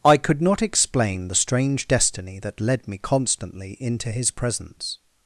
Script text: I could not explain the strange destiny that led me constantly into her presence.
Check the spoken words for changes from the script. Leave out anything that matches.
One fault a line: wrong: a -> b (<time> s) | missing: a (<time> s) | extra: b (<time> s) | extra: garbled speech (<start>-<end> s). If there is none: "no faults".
wrong: her -> his (4.1 s)